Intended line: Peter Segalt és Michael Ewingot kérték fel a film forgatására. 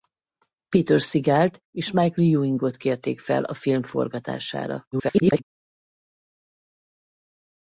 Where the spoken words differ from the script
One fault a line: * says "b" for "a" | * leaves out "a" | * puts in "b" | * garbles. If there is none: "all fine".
* garbles